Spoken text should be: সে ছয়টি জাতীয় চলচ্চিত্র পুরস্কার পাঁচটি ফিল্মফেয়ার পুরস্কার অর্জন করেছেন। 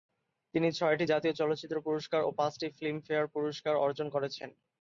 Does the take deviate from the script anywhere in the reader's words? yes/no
yes